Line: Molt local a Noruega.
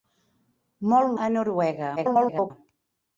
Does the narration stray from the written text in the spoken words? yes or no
yes